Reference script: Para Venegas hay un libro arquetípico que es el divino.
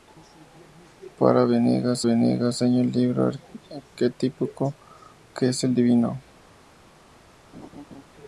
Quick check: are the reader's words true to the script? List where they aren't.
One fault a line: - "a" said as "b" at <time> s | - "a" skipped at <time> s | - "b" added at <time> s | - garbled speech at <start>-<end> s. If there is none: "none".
- "Venegas" added at 2.0 s